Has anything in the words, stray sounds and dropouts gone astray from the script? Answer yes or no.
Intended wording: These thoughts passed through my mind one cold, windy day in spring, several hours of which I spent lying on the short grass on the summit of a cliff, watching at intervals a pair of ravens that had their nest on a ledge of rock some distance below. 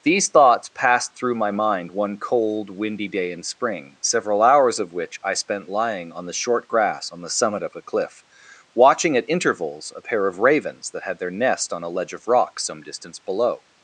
no